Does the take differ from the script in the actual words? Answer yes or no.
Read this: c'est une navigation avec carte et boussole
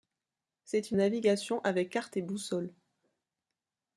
no